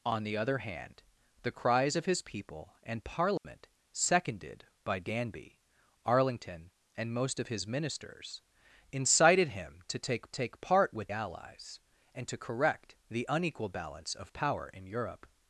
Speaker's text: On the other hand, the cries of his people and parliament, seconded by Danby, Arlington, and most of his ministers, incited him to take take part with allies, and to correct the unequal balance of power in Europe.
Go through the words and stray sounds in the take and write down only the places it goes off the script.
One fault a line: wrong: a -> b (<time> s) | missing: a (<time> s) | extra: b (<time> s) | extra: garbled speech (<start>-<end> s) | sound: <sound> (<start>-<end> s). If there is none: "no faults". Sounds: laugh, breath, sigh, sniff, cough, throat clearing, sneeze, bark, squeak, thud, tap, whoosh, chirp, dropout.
sound: dropout (3.4-3.4 s)